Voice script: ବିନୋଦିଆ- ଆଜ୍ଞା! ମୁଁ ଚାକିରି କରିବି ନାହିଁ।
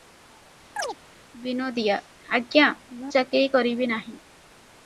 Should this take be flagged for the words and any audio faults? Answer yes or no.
yes